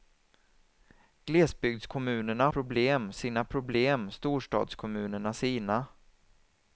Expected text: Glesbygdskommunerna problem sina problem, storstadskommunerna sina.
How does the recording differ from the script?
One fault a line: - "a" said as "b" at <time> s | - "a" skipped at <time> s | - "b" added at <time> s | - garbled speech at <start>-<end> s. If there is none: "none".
none